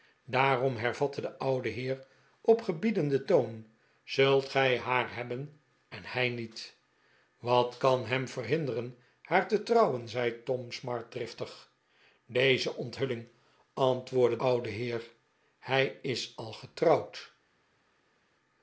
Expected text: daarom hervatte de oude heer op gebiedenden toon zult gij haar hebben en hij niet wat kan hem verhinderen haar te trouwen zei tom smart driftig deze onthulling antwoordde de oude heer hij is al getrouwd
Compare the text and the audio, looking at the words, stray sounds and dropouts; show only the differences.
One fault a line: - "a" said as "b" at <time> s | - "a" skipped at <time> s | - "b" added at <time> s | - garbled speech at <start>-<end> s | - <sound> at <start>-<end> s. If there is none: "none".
- "de" skipped at 14.4 s